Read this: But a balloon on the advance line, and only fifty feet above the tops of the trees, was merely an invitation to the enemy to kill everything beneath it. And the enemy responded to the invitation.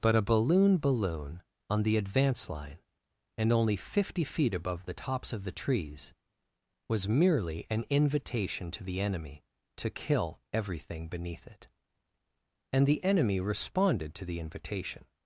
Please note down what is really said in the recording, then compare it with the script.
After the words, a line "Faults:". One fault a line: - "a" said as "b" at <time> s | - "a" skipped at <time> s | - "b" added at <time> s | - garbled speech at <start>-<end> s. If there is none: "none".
But a balloon balloon on the advance line, and only fifty feet above the tops of the trees, was merely an invitation to the enemy to kill everything beneath it. And the enemy responded to the invitation.
Faults:
- "balloon" added at 0.8 s